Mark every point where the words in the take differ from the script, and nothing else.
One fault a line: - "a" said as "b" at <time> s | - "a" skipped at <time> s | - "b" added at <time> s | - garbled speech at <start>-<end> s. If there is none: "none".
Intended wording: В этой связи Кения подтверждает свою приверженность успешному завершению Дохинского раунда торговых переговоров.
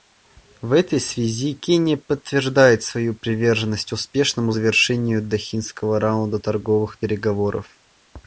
none